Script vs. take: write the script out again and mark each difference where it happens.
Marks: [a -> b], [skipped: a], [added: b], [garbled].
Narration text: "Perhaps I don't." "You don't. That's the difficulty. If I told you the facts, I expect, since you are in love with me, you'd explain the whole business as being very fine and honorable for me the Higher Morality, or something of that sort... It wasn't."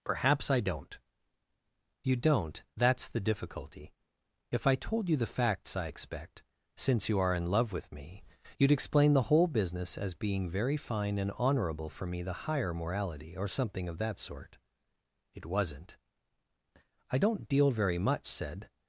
"Perhaps I don't." "You don't. That's the difficulty. If I told you the facts, I expect, since you are in love with me, you'd explain the whole business as being very fine and honorable for me the Higher Morality, or something of that sort... It wasn't." [added: I don't deal very much said]